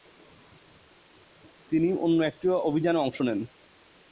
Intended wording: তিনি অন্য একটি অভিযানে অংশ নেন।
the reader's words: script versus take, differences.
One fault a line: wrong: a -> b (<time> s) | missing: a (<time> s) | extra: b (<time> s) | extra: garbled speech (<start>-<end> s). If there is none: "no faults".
no faults